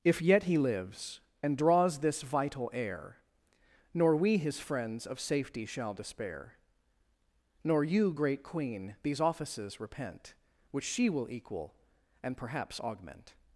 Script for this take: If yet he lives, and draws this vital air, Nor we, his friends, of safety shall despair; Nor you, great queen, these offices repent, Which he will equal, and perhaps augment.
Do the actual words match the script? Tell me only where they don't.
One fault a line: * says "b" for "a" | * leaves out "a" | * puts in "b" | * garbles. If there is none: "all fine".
* says "she" for "he"